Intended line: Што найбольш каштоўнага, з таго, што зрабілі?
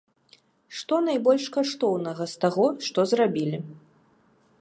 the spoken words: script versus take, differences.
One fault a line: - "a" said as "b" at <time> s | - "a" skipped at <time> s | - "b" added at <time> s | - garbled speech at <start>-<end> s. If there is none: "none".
none